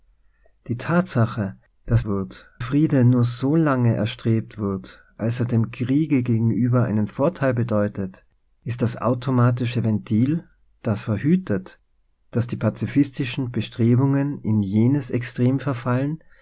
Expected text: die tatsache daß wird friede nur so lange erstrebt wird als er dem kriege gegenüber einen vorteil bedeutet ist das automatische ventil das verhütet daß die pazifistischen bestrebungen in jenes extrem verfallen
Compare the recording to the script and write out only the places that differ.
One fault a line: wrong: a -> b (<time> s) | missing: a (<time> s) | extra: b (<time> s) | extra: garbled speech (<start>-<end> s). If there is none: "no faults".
no faults